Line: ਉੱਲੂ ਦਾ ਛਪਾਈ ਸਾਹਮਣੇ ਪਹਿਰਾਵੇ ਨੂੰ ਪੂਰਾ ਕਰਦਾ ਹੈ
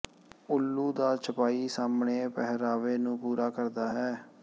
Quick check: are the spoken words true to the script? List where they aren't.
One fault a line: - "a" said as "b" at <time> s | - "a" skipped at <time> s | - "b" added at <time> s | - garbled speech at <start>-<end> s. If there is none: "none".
none